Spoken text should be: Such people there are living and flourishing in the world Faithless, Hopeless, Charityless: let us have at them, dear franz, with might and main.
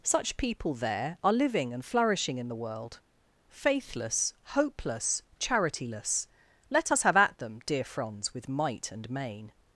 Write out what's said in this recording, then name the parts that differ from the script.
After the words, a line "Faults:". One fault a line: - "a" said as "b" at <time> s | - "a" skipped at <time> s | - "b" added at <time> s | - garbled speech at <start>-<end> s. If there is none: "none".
Such people there are living and flourishing in the world Faithless, Hopeless, Charityless: let us have at them, dear franz, with might and main.
Faults:
none